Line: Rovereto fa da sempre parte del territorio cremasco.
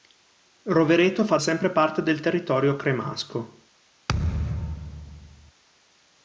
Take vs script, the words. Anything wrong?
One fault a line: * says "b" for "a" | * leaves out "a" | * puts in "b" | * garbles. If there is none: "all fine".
* leaves out "da"